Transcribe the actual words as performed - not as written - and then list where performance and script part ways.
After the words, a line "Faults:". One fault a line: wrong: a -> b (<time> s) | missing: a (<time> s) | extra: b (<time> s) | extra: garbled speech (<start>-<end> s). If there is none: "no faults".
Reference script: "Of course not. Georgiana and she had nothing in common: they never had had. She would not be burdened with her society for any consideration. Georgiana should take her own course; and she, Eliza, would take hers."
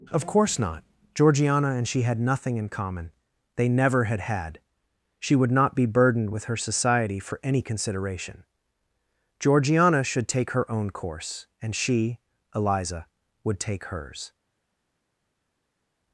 "Of course not. Georgiana and she had nothing in common: they never had had. She would not be burdened with her society for any consideration. Georgiana should take her own course; and she, Eliza, would take hers."
Faults:
no faults